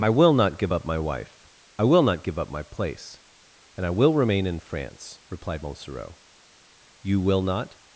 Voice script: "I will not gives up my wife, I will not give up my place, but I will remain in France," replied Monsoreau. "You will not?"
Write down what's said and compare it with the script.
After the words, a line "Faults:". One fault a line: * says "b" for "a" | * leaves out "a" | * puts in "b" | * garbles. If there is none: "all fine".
"I will not give up my wife, I will not give up my place, and I will remain in France," replied Monsoreau. "You will not?"
Faults:
* says "give" for "gives"
* says "and" for "but"